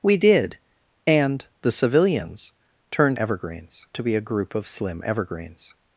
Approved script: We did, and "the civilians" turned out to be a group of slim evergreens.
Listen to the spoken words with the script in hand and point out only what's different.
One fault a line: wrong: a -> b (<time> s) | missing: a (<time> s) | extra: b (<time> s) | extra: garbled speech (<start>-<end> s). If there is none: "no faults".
wrong: out -> evergreens (3.2 s)